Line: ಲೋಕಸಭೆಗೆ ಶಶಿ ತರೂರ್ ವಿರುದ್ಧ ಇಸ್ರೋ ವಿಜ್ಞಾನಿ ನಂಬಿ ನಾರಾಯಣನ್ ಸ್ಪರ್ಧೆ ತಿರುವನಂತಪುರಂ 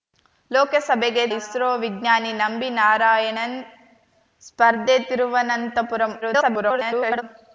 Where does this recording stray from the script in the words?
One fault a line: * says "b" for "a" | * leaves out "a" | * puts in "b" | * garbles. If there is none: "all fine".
* leaves out "ಶಶಿ ತರೂರ್ ವಿರುದ್ಧ"
* garbles